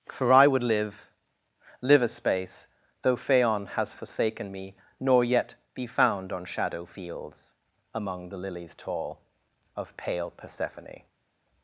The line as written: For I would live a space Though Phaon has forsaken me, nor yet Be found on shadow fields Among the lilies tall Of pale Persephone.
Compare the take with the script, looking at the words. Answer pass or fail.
fail